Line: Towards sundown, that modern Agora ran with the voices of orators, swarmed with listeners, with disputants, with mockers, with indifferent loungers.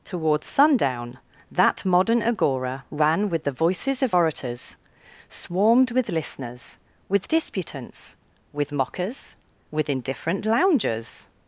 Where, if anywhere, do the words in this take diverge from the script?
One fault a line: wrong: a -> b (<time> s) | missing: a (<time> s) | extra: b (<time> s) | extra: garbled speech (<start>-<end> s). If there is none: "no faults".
no faults